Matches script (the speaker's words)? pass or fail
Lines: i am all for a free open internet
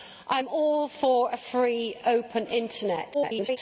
fail